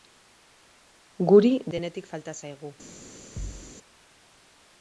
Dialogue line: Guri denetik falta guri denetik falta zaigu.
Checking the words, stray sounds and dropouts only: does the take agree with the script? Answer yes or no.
no